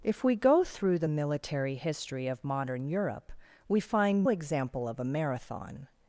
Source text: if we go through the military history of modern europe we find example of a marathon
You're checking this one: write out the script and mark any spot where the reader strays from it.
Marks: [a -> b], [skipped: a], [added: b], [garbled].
if we go through the military history of modern europe we find example of a marathon